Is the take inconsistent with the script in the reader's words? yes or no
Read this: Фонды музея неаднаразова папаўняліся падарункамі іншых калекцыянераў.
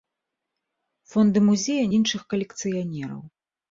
yes